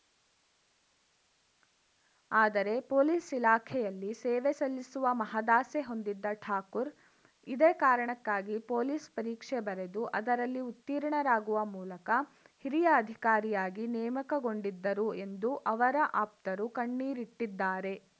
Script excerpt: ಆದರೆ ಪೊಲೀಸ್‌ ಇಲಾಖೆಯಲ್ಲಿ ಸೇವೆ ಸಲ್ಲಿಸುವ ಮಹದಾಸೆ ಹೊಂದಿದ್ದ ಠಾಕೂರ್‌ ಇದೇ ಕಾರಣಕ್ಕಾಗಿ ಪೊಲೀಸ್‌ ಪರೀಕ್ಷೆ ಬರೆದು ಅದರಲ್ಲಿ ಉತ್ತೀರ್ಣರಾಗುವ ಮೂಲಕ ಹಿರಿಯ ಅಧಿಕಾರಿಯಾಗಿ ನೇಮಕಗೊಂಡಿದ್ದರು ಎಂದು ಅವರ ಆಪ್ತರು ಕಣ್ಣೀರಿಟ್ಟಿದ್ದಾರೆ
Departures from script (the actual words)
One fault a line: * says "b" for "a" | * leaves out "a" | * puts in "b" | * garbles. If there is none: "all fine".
all fine